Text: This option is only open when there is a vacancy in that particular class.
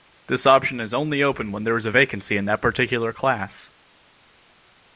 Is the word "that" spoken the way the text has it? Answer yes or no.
yes